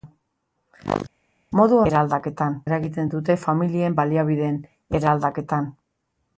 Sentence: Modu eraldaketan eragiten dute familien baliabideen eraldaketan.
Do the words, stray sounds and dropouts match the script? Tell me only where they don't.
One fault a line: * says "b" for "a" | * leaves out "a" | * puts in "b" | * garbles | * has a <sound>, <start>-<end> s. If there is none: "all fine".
all fine